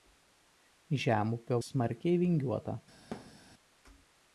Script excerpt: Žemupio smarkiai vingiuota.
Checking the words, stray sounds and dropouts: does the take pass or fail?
fail